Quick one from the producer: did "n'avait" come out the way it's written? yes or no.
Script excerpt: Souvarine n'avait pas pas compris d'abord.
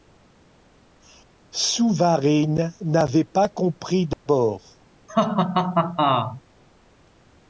yes